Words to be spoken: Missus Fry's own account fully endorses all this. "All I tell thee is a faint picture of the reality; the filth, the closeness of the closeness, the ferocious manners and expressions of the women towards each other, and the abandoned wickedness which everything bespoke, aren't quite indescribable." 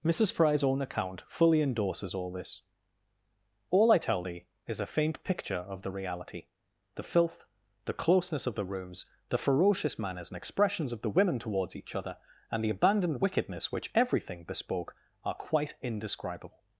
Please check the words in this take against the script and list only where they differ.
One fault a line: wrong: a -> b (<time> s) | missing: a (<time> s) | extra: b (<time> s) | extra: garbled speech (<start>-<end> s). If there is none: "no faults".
wrong: closeness -> rooms (8.7 s)
wrong: aren't -> are (15.2 s)